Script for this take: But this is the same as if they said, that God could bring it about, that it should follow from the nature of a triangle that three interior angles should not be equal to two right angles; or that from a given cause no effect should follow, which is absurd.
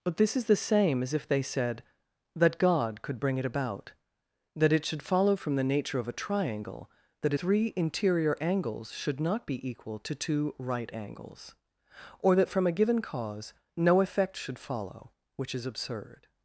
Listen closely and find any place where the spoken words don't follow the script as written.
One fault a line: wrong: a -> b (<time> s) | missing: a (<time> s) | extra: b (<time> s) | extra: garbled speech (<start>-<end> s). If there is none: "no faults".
no faults